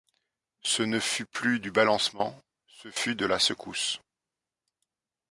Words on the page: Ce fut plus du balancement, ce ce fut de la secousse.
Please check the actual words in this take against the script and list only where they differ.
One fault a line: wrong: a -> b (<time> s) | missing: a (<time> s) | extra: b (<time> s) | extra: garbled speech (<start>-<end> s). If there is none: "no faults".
extra: ne (0.8 s)
missing: ce (2.9 s)